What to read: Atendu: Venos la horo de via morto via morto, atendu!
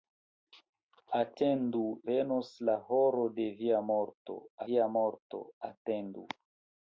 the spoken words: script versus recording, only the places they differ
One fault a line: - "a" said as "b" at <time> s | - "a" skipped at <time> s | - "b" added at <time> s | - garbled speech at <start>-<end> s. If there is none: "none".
none